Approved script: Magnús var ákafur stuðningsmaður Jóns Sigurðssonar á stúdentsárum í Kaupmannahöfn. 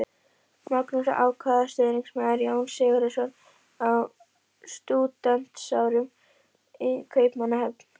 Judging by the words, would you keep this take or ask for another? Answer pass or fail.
pass